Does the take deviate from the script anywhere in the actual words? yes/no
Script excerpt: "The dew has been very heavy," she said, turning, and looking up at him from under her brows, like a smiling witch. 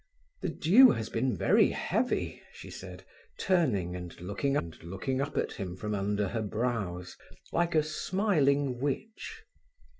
yes